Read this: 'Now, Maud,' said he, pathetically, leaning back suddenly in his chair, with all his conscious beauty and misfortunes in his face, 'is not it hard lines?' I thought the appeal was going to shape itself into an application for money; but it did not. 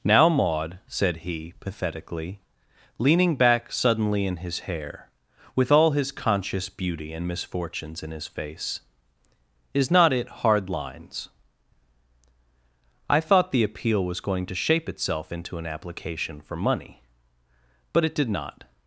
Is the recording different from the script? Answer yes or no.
yes